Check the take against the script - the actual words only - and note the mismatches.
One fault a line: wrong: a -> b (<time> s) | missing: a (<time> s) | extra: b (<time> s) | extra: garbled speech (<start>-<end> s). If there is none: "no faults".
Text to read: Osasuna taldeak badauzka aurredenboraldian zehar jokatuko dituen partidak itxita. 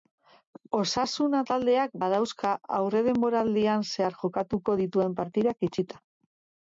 no faults